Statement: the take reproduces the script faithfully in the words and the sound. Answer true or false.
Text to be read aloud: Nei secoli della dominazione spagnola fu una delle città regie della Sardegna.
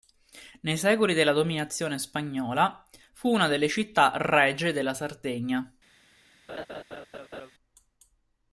false